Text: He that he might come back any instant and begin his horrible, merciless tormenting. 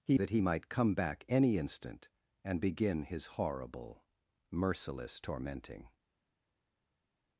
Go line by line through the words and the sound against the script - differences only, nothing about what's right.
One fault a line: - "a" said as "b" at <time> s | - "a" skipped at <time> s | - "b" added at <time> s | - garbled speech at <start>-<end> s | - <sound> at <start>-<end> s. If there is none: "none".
none